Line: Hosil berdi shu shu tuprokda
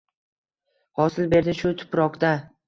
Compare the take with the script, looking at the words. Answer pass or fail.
fail